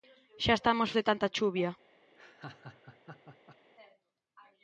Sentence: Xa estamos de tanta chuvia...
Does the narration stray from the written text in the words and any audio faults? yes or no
yes